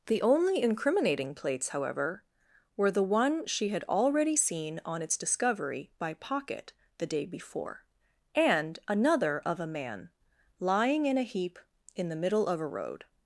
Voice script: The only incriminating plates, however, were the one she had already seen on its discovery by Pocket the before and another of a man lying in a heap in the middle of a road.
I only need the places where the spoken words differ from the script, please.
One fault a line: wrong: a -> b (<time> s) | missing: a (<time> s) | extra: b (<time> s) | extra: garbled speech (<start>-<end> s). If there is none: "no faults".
extra: day (7.1 s)